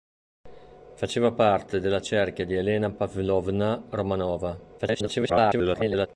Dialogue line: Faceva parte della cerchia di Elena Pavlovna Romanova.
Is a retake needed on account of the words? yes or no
yes